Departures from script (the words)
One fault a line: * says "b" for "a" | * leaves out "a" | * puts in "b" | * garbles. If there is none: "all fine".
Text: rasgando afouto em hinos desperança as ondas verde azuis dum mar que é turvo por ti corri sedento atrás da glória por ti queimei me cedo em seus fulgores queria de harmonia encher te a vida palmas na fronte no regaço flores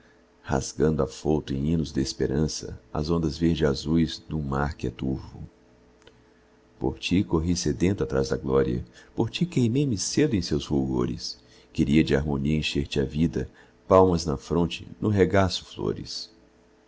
all fine